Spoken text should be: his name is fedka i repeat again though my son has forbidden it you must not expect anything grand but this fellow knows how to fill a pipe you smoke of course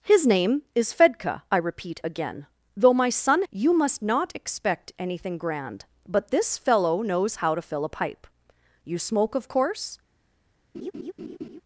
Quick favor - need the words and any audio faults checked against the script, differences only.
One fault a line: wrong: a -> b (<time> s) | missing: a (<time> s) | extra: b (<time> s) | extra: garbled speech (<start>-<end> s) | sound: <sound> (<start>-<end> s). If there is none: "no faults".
missing: has forbidden it (3.4 s)
sound: laugh (10.7-11.6 s)